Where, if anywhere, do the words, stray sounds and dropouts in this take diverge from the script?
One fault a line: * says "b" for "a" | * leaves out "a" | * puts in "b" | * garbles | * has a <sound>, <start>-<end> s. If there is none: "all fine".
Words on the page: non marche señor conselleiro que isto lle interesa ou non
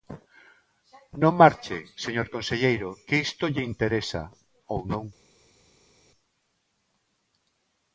all fine